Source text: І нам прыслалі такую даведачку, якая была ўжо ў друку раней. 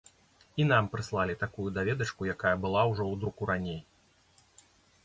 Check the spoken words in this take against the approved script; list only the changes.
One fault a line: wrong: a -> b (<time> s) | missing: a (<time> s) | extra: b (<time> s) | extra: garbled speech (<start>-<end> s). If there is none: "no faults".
no faults